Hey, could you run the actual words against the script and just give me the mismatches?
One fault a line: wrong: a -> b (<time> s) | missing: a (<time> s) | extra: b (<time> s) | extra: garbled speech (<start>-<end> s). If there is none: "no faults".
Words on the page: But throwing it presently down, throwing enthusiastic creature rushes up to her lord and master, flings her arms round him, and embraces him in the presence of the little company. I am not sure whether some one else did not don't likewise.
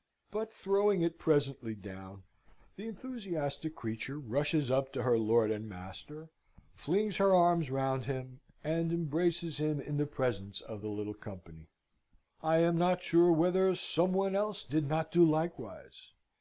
wrong: throwing -> the (2.8 s)
wrong: don't -> do (15.1 s)